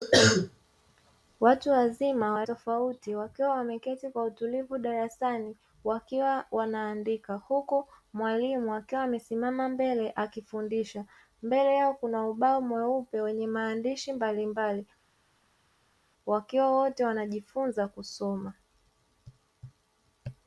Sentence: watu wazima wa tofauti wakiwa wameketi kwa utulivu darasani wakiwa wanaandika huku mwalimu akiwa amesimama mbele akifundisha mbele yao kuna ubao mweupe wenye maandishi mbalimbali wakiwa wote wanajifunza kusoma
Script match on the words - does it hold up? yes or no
yes